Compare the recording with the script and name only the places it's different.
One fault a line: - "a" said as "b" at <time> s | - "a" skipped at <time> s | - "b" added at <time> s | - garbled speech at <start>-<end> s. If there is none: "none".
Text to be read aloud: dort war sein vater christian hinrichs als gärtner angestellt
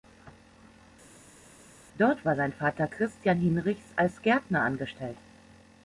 none